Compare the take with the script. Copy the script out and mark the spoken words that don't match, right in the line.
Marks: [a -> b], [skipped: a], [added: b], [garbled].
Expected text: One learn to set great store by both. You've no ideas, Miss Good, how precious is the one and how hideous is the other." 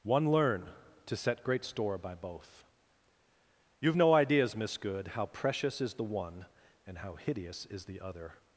One learn to set great store by both. You've no ideas, Miss Good, how precious is the one and how hideous is the other."